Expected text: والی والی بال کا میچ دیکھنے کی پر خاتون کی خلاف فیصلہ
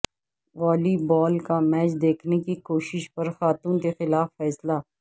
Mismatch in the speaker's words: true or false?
true